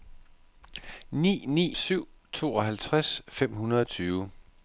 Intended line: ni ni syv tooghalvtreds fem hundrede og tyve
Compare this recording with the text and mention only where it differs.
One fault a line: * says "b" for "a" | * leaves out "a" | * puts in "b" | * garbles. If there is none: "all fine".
all fine